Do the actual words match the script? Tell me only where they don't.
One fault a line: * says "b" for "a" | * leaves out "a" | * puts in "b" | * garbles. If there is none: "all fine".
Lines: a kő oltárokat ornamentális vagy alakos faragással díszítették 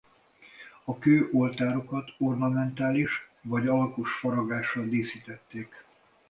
all fine